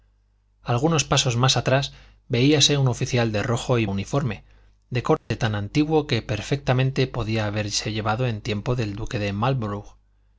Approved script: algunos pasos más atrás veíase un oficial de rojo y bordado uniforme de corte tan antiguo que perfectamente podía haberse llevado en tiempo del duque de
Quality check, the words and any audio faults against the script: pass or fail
fail